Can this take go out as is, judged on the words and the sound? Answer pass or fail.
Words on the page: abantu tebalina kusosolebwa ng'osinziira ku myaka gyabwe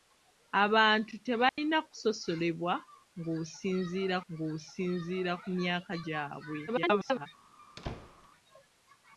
fail